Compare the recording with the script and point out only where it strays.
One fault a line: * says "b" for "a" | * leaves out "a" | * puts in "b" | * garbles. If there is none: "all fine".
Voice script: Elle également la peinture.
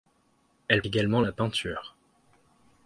all fine